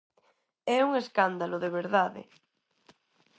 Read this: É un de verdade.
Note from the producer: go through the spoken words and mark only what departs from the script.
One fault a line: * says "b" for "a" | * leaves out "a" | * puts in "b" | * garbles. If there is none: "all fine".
* puts in "escándalo"